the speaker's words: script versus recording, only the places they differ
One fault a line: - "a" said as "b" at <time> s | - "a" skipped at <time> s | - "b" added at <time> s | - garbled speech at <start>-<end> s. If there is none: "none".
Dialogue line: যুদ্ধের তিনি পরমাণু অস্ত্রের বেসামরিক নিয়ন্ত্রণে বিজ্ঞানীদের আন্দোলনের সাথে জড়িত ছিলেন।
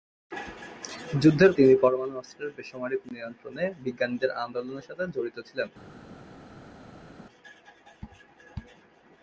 none